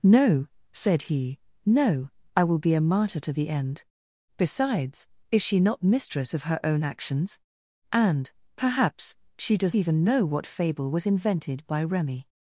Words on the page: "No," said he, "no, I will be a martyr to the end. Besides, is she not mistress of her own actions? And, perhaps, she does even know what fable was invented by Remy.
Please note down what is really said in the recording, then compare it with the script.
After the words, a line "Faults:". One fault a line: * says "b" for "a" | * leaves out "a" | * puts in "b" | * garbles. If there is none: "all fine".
"No," said he, "no, I will be a martyr to the end. Besides, is she not mistress of her own actions? And, perhaps, she does even know what fable was invented by Remy.
Faults:
all fine